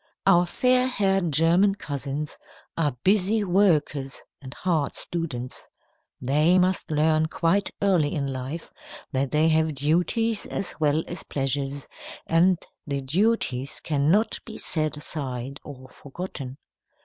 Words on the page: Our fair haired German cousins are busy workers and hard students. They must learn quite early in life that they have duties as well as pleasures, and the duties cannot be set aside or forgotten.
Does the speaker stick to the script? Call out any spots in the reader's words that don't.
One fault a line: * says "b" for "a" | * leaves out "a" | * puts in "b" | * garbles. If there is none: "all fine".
all fine